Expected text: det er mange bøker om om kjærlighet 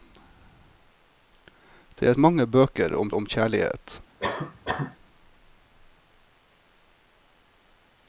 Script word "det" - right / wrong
right